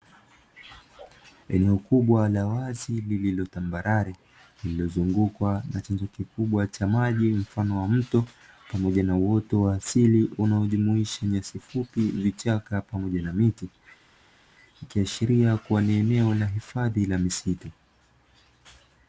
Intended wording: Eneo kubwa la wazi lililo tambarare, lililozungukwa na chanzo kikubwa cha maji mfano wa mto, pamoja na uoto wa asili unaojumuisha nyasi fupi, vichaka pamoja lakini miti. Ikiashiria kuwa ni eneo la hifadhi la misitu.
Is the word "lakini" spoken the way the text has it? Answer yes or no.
no